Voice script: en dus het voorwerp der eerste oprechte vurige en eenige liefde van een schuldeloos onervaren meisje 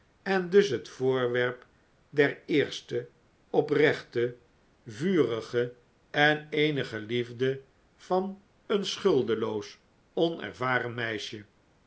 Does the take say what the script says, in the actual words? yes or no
yes